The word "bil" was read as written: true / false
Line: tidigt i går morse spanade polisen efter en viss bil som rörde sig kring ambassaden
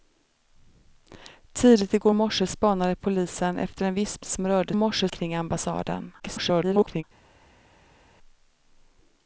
false